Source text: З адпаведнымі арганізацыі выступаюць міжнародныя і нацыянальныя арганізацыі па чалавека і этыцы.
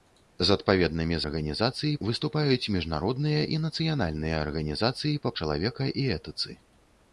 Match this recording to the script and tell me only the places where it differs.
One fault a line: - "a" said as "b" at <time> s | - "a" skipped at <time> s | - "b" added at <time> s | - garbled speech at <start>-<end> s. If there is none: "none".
none